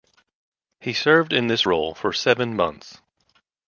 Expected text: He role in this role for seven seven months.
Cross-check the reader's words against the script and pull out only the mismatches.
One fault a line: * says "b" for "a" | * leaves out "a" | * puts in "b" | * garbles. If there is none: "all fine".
* says "served" for "role"
* leaves out "seven"